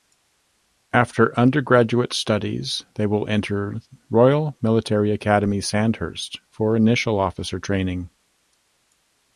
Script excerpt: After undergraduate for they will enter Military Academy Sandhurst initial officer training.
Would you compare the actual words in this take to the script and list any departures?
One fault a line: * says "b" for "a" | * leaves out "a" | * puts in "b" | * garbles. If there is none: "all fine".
* says "studies" for "for"
* puts in "Royal"
* puts in "for"